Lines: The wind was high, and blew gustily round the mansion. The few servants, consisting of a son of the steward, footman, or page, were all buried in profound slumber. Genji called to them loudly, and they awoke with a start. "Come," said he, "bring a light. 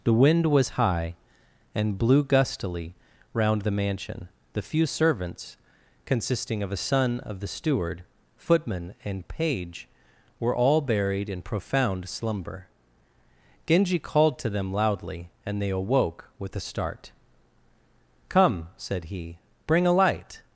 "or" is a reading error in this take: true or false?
true